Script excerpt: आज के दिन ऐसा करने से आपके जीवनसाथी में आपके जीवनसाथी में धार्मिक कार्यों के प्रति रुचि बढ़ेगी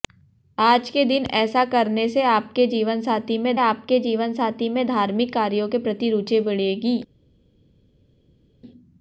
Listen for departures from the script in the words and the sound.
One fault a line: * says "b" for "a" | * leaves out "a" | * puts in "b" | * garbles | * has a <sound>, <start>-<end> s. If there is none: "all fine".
all fine